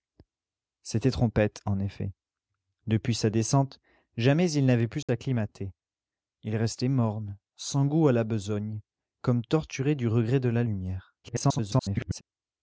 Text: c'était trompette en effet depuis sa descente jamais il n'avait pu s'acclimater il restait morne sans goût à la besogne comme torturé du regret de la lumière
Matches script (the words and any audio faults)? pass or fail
fail